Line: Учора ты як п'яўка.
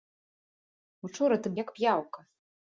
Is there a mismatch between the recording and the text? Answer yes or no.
no